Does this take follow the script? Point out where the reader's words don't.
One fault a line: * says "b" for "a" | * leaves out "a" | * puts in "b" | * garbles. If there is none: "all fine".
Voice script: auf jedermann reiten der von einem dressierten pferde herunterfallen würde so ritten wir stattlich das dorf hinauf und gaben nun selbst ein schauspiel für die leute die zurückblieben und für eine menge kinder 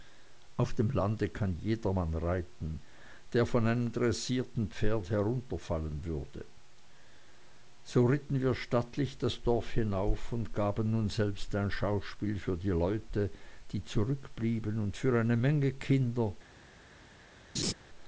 * puts in "dem lande kann"